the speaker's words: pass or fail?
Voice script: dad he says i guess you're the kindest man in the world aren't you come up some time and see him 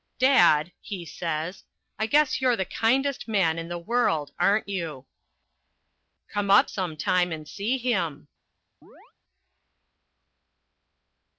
pass